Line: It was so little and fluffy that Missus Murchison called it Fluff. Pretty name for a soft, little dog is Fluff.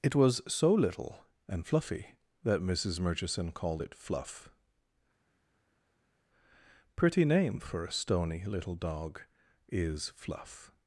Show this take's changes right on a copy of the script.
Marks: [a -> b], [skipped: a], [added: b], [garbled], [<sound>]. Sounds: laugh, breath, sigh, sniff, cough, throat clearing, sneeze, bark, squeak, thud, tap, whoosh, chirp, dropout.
It was so little and fluffy that Missus Murchison called it Fluff. Pretty name for a [soft, -> stony] little dog is Fluff.